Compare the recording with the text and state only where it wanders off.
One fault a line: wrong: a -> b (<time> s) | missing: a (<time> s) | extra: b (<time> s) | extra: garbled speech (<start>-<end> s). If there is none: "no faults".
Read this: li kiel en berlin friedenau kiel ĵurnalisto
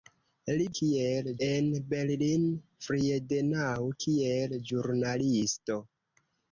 no faults